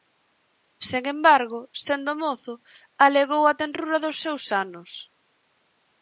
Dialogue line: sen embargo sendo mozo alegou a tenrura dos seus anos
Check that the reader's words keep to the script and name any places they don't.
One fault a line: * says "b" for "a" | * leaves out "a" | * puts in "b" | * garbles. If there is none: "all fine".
all fine